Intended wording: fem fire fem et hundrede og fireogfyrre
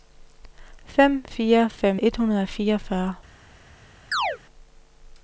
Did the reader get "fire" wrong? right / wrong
right